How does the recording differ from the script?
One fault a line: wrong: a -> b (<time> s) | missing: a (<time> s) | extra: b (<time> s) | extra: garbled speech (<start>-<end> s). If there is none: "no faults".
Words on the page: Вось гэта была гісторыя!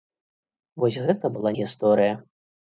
no faults